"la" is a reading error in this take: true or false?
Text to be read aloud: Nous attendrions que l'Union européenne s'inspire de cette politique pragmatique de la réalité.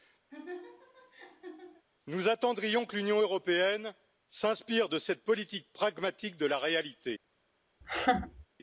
false